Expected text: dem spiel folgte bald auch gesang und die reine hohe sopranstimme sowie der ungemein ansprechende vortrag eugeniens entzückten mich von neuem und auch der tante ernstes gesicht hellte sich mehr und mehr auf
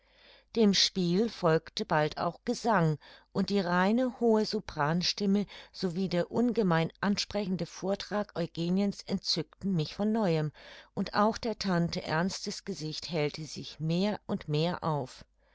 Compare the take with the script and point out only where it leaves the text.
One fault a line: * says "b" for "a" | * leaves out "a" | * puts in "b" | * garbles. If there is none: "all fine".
all fine